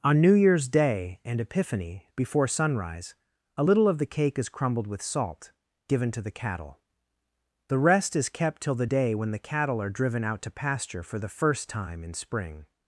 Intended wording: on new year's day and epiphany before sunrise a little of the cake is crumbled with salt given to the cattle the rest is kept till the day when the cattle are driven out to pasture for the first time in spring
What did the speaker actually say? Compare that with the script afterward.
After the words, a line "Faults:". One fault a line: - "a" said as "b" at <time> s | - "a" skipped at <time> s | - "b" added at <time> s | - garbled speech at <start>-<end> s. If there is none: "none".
on new year's day and epiphany before sunrise a little of the cake is crumbled with salt given to the cattle the rest is kept till the day when the cattle are driven out to pasture for the first time in spring
Faults:
none